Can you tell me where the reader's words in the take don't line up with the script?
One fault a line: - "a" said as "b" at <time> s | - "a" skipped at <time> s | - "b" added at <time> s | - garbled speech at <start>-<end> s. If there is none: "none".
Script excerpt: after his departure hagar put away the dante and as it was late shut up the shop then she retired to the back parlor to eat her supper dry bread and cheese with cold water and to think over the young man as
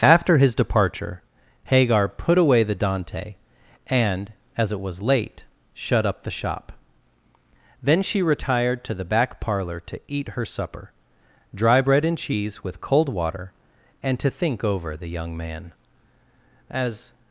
none